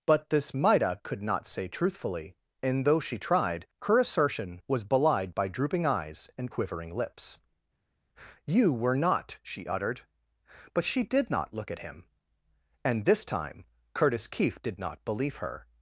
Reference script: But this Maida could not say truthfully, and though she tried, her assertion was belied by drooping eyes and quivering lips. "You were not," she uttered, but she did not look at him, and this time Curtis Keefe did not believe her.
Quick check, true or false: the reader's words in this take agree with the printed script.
true